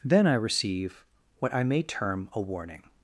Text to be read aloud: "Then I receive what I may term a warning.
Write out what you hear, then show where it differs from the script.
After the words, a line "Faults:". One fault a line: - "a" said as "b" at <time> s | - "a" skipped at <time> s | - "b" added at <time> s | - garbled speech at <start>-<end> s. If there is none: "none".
"Then I receive what I may term a warning.
Faults:
none